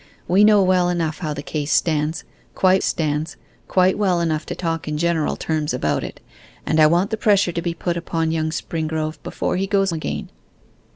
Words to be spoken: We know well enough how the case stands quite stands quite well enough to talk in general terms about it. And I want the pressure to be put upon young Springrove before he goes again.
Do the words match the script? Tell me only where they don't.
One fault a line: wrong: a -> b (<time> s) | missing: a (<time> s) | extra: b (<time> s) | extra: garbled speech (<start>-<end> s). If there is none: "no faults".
no faults